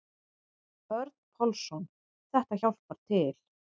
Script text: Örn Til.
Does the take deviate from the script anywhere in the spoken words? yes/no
yes